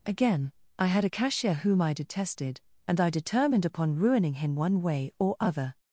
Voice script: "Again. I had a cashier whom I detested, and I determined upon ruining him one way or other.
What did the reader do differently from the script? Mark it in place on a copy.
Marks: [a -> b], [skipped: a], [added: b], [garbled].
"Again. I had a cashier whom I detested, and I determined upon ruining him one way or other.